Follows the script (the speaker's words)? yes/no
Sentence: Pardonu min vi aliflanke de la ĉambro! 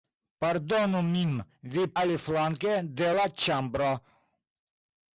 yes